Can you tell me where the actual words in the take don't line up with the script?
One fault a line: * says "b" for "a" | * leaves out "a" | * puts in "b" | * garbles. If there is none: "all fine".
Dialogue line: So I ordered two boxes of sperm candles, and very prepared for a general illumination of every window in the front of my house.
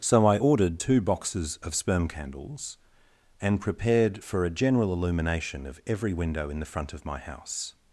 * leaves out "very"